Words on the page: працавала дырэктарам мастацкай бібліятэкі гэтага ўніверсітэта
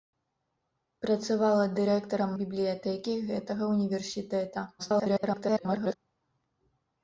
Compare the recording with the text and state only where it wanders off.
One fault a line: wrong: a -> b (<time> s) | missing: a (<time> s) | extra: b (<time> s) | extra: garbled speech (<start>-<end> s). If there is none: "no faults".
missing: мастацкай (2.3 s)
extra: garbled speech (4.8-6.0 s)